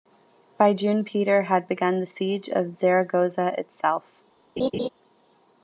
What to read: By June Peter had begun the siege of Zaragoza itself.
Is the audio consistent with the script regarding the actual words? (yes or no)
yes